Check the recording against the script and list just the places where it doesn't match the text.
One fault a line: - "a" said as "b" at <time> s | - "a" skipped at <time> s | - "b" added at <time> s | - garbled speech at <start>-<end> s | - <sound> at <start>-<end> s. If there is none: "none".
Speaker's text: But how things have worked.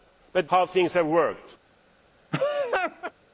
- laugh at 2.3-3.1 s